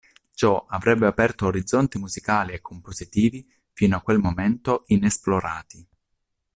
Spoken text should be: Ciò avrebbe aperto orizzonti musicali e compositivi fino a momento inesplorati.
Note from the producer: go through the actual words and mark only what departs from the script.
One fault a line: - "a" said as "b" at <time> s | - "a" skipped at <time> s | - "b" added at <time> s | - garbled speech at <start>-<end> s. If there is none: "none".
- "quel" added at 4.0 s